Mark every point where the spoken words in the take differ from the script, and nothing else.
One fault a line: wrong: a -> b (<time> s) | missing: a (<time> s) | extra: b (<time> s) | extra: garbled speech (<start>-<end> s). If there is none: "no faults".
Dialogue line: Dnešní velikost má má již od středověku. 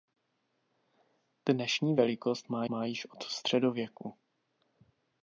no faults